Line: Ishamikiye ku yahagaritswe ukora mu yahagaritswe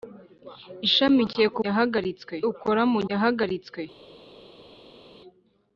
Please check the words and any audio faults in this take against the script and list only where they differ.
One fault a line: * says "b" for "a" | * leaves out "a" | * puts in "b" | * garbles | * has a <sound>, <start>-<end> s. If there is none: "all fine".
all fine